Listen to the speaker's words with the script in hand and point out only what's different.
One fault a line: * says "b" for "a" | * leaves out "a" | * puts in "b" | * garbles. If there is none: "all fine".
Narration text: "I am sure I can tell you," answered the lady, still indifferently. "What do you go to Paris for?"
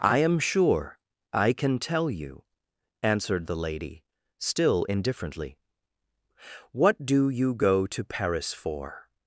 all fine